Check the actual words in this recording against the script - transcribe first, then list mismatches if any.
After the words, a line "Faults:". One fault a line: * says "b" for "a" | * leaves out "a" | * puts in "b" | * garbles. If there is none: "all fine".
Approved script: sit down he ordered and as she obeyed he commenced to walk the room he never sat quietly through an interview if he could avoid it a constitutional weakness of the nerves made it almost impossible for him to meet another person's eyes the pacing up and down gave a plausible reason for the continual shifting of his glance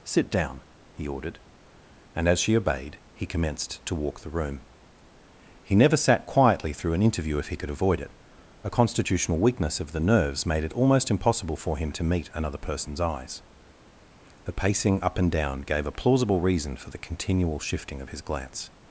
sit down he ordered and as she obeyed he commenced to walk the room he never sat quietly through an interview if he could avoid it a constitutional weakness of the nerves made it almost impossible for him to meet another person's eyes the pacing up and down gave a plausible reason for the continual shifting of his glance
Faults:
all fine